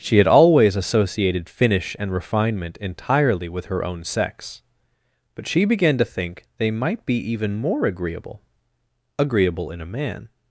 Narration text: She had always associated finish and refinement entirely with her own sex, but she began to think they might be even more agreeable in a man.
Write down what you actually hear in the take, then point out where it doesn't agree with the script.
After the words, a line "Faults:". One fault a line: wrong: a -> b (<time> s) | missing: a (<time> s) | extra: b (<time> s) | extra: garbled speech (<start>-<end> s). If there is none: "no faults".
She had always associated finish and refinement entirely with her own sex, but she began to think they might be even more agreeable agreeable in a man.
Faults:
extra: agreeable (9.2 s)